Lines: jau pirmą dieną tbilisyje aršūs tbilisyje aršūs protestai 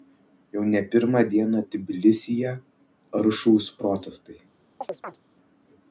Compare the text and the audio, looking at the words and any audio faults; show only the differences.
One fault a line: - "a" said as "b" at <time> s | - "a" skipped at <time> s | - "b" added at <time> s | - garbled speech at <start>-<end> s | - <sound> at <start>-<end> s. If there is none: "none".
- "ne" added at 0.7 s
- "tbilisyje aršūs" skipped at 3.7 s
- chirp at 4.8-5.2 s